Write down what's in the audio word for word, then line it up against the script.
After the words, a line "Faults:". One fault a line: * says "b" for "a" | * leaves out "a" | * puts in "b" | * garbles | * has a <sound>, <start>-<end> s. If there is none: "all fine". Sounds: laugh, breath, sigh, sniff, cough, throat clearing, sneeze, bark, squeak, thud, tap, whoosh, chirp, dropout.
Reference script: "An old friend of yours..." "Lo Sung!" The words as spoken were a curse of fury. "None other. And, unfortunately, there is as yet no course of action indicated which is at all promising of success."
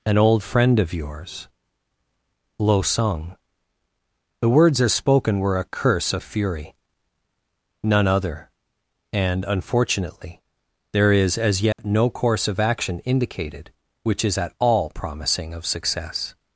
"An old friend of yours..." "Lo Sung!" The words as spoken were a curse of fury. "None other. And, unfortunately, there is as yet no course of action indicated which is at all promising of success."
Faults:
* has a dropout, 11.7-11.8 s